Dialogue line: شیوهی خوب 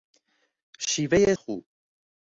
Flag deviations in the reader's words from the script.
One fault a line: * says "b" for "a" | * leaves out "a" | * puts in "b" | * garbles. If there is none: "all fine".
all fine